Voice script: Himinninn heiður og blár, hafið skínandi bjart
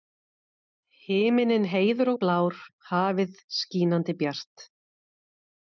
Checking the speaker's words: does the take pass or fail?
pass